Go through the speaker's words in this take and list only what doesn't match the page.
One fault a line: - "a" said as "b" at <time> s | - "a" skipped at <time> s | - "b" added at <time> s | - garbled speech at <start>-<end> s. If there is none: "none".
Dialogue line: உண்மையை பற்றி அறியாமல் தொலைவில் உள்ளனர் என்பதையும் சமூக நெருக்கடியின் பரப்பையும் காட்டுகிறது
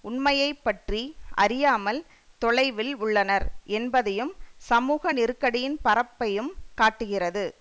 none